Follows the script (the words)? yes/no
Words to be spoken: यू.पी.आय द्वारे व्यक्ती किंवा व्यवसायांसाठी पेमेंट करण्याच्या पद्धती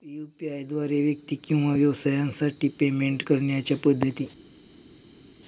yes